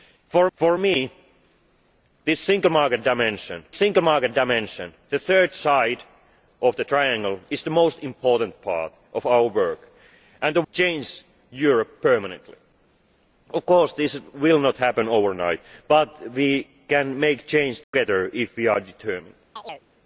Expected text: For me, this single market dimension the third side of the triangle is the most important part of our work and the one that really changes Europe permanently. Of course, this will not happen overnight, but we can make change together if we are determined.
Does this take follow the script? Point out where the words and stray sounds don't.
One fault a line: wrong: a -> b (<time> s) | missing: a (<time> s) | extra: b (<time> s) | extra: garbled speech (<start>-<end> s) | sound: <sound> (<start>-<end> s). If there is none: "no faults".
extra: for (0.6 s)
extra: single market dimension (3.7 s)
missing: one that really (10.6 s)
sound: dropout (17.8-17.9 s)
sound: chirp (19.6-19.9 s)